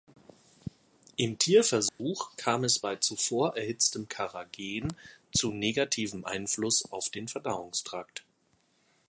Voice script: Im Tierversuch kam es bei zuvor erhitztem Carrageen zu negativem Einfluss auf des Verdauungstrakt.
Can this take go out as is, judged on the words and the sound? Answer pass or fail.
fail